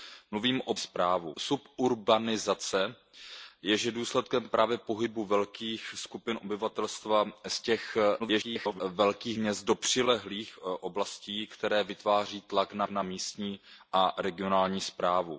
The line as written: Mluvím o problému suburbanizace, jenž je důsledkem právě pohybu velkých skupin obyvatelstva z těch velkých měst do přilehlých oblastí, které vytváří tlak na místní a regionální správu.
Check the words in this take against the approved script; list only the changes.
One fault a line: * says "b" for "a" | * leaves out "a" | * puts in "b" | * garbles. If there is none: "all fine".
* says "správu" for "problému"
* garbles
* puts in "na"